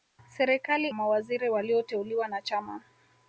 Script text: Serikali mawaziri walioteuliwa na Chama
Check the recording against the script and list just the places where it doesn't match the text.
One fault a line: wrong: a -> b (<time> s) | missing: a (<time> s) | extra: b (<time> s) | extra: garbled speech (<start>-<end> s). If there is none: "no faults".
no faults